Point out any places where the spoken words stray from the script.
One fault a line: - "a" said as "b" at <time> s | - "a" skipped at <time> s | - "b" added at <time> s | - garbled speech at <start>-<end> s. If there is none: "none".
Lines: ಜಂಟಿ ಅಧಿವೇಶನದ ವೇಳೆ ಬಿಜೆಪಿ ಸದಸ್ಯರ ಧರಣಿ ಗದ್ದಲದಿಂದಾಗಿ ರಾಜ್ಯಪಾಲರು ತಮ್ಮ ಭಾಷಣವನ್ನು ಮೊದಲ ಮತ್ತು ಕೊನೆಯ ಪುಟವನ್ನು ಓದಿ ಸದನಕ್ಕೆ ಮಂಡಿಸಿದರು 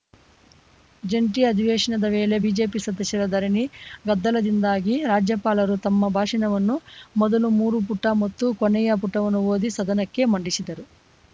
- "ಮೂರು ಪುಟ" added at 7.6 s